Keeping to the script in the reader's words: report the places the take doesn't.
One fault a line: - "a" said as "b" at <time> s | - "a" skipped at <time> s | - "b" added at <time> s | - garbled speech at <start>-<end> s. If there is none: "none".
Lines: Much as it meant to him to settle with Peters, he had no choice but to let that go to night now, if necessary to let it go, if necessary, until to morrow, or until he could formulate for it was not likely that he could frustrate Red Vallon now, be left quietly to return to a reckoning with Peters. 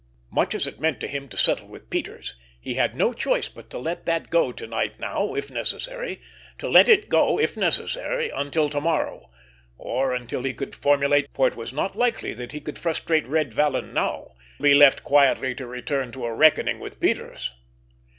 none